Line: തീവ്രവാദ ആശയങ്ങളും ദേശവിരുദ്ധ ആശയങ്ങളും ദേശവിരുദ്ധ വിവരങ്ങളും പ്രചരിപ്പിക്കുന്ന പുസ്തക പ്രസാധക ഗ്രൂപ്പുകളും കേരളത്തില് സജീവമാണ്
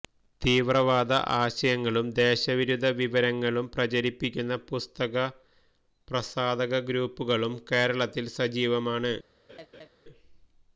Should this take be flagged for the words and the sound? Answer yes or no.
yes